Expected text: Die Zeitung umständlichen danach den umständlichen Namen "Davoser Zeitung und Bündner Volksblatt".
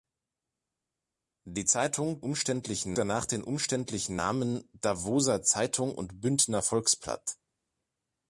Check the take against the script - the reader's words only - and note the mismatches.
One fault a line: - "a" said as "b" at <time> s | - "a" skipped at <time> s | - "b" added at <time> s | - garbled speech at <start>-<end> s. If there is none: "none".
none